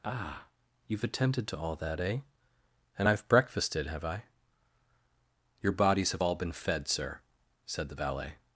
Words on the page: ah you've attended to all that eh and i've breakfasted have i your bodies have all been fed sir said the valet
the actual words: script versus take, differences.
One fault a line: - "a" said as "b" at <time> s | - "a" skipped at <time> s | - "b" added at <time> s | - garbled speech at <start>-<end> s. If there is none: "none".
none